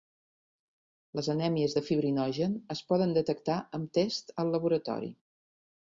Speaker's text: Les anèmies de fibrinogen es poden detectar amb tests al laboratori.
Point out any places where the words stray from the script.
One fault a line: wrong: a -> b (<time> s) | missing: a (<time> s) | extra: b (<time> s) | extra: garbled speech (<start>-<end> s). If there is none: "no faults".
no faults